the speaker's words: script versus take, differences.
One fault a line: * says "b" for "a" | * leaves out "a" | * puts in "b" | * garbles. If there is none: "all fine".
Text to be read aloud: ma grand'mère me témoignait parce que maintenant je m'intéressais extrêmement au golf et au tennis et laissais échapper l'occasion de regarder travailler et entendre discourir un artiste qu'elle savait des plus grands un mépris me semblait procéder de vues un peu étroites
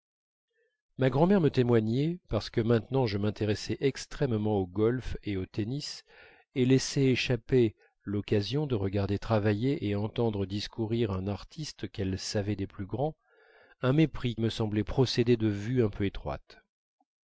all fine